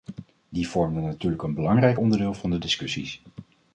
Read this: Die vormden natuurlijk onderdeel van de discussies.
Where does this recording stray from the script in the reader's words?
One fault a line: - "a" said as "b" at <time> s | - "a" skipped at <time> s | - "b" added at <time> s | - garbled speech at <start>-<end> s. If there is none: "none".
- "een belangrijk" added at 1.4 s